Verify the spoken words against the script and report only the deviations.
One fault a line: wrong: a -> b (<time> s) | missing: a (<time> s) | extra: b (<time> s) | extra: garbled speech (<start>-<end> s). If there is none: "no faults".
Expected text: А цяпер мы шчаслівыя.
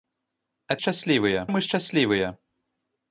wrong: цяпер -> шчаслівыя (0.8 s)